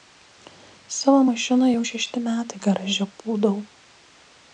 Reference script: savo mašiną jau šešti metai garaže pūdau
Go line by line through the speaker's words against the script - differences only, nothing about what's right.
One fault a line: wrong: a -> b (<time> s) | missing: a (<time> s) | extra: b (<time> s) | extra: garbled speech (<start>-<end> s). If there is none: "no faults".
no faults